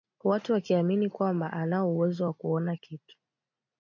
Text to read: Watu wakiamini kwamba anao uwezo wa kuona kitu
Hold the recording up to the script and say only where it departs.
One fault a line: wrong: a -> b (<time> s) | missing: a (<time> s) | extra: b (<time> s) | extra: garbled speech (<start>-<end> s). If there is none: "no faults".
no faults